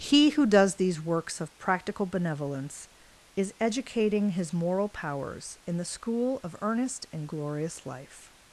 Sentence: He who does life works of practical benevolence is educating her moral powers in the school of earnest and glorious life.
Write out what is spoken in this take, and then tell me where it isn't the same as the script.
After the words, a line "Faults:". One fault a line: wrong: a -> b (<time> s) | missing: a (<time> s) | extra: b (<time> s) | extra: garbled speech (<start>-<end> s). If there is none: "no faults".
He who does these works of practical benevolence is educating his moral powers in the school of earnest and glorious life.
Faults:
wrong: life -> these (0.8 s)
wrong: her -> his (4.3 s)